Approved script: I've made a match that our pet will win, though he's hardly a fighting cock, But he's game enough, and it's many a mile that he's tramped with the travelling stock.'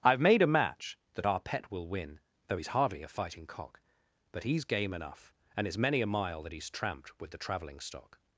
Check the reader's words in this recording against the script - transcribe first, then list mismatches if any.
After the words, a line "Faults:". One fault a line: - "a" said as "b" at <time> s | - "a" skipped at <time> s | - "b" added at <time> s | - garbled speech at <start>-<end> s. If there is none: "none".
I've made a match that our pet will win, though he's hardly a fighting cock, But he's game enough, and it's many a mile that he's tramped with the travelling stock.'
Faults:
none